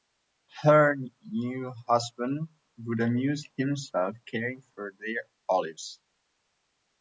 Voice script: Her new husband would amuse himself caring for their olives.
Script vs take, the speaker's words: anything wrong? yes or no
no